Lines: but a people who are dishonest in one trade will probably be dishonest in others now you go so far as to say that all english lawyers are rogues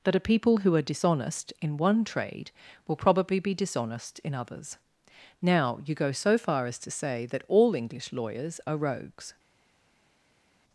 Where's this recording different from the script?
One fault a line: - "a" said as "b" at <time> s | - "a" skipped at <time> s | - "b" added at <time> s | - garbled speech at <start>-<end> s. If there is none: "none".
- "but" said as "that" at 0.0 s